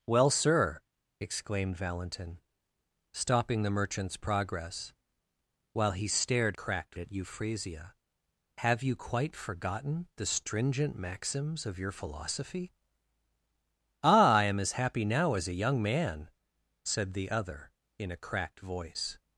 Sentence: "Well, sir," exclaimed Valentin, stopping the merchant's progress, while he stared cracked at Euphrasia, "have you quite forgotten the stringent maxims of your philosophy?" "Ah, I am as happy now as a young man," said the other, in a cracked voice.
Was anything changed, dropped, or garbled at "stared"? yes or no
no